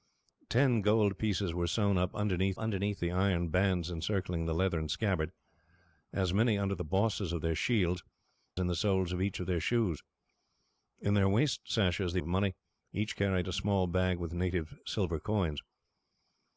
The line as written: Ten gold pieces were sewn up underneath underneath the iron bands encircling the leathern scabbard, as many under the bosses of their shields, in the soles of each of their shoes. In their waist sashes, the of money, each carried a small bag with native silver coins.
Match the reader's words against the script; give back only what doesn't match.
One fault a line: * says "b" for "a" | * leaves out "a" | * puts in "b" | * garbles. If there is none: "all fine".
all fine